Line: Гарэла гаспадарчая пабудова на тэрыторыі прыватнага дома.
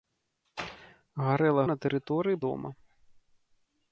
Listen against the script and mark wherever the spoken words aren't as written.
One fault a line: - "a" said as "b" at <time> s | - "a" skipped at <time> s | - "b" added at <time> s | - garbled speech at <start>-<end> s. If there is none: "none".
- "гаспадарчая пабудова" skipped at 1.6 s
- "прыватнага" skipped at 2.4 s